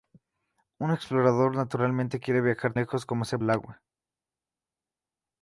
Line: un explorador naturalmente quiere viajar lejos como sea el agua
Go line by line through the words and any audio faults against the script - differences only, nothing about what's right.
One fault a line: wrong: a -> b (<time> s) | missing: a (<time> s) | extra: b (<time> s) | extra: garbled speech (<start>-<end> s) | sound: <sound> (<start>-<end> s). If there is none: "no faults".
no faults